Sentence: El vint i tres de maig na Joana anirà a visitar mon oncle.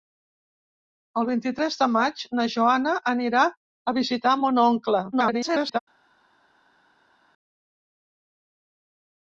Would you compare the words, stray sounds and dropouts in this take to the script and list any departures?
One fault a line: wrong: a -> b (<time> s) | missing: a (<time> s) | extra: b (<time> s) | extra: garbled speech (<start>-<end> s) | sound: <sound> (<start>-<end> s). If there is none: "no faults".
extra: garbled speech (5.1-5.8 s)